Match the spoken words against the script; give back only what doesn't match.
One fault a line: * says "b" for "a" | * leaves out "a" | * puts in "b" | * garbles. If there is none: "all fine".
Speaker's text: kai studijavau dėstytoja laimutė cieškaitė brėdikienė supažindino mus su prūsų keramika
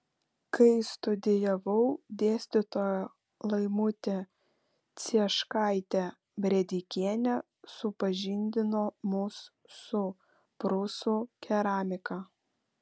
all fine